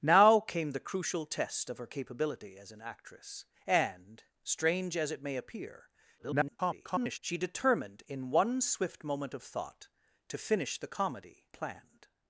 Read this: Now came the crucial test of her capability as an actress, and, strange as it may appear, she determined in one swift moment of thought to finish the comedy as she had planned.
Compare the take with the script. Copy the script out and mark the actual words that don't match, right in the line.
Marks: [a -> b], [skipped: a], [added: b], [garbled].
Now came the crucial test of her capability as an actress, and, strange as it may appear, [garbled] she determined in one swift moment of thought to finish the comedy [skipped: as she had] planned.